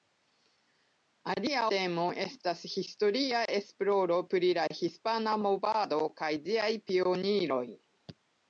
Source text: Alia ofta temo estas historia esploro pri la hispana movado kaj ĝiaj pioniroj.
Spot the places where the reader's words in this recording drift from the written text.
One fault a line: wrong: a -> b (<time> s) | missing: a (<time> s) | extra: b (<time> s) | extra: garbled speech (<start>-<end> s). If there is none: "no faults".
missing: ofta (1.6 s)